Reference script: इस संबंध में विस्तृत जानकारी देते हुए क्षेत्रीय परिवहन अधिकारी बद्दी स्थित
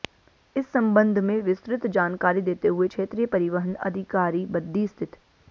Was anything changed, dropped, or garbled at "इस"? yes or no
no